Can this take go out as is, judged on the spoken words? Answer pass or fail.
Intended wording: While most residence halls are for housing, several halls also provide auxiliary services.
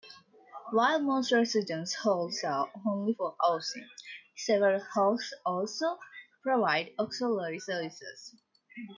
fail